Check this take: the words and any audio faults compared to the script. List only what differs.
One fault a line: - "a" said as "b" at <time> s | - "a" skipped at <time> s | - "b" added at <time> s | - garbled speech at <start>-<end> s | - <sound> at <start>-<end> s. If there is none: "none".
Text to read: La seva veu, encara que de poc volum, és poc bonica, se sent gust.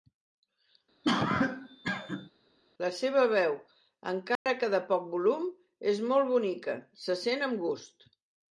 - cough at 1.0-2.3 s
- dropout at 4.4-4.5 s
- "poc" said as "molt" at 6.1 s
- "amb" added at 7.5 s